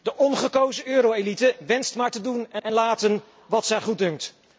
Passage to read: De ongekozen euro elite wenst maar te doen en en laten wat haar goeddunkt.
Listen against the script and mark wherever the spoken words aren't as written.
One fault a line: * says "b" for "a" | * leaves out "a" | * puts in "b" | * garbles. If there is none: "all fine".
all fine